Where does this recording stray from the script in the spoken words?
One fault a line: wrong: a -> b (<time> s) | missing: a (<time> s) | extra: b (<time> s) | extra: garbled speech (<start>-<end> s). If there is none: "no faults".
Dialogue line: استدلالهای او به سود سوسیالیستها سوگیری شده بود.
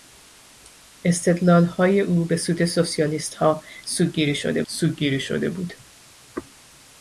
extra: سوگیری شده (4.7 s)